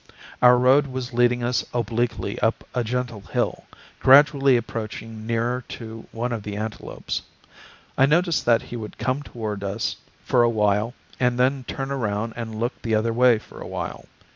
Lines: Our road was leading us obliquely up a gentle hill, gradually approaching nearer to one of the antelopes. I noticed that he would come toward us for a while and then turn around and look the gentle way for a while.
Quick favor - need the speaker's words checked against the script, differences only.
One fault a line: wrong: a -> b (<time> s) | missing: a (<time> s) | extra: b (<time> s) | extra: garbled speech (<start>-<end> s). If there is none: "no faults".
wrong: gentle -> other (12.9 s)